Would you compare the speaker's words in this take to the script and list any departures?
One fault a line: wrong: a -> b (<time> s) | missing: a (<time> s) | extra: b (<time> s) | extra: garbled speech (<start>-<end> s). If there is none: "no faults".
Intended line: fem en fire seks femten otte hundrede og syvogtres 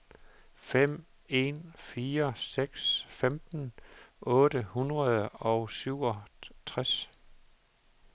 no faults